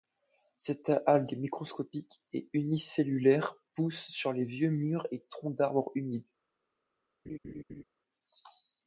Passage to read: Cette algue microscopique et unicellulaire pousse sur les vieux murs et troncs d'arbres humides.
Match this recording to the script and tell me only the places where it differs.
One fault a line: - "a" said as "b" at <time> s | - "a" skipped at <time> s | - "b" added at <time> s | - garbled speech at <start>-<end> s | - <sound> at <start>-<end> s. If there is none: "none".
- laugh at 7.3-7.8 s